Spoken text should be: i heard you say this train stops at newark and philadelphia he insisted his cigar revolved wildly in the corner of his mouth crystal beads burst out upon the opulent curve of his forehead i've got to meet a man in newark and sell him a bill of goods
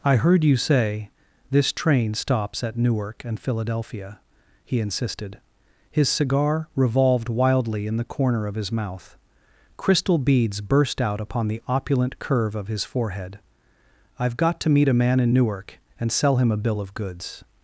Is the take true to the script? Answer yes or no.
yes